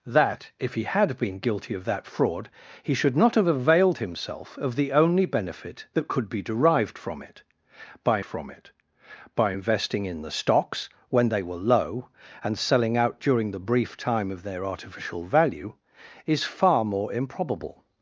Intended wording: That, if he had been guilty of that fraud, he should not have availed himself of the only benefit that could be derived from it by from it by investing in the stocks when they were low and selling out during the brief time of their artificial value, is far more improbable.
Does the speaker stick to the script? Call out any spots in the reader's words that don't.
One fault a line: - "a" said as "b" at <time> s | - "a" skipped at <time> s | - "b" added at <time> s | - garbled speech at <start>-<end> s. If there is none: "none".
none